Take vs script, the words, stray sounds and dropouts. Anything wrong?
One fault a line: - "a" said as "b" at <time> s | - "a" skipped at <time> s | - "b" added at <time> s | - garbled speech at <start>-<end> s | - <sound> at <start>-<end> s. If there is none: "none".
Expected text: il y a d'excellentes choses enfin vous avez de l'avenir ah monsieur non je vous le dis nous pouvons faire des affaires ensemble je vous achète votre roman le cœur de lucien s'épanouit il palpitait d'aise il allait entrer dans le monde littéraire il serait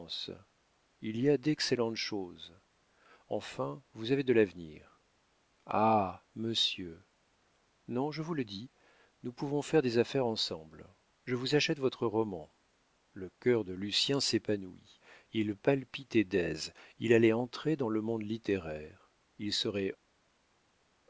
none